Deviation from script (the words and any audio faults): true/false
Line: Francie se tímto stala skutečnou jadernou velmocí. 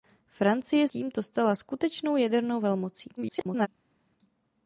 true